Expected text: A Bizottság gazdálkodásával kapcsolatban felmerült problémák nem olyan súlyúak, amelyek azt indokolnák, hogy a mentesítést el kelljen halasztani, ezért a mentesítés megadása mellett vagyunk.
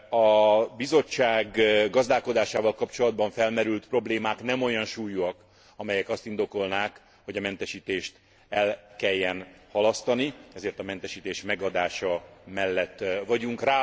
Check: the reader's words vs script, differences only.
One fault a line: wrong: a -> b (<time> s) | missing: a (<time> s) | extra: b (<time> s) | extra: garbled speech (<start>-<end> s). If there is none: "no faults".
no faults